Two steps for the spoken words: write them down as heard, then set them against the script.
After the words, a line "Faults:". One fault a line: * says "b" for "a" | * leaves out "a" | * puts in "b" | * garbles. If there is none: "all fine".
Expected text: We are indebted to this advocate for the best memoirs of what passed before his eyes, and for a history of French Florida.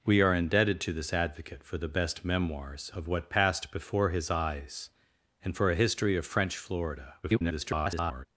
We are indebted to this advocate for the best memoirs of what passed before his eyes, and for a history of French Florida. [garbled]
Faults:
* garbles